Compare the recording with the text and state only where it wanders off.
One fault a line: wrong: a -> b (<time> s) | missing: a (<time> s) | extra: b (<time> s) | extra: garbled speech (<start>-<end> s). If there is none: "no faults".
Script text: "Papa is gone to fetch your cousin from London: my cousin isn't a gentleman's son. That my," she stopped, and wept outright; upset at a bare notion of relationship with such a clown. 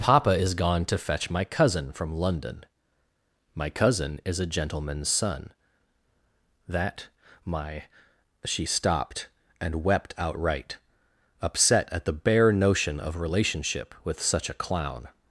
wrong: your -> my (1.3 s)
wrong: isn't -> is (4.2 s)
wrong: a -> the (12.1 s)